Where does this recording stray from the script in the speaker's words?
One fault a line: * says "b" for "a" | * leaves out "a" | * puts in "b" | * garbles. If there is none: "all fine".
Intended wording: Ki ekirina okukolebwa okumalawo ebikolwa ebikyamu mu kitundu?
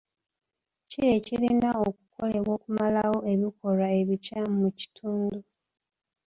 all fine